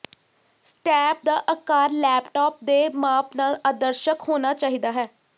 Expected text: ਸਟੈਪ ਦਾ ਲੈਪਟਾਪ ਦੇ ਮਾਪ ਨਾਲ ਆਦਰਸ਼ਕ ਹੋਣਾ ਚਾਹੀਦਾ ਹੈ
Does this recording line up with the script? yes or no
no